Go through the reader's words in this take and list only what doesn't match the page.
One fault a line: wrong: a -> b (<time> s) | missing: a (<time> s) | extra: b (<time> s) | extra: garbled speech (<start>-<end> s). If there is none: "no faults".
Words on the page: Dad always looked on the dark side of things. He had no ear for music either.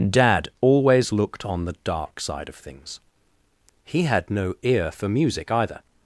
no faults